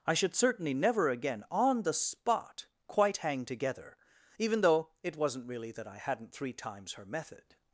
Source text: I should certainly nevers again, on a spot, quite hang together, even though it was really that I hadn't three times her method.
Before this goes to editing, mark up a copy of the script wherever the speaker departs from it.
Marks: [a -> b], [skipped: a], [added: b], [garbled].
I should certainly [nevers -> never] again, on [a -> the] spot, quite hang together, even though it [was -> wasn't] really that I hadn't three times her method.